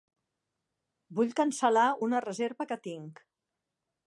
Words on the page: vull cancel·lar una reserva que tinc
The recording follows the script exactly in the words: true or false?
true